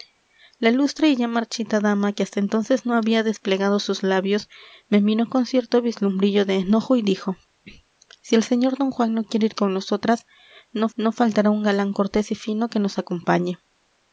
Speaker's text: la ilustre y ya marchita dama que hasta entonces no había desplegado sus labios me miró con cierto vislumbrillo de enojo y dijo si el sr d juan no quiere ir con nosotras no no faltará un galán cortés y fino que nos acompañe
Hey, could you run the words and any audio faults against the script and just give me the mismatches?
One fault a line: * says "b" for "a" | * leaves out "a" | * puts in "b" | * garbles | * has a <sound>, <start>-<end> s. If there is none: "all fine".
all fine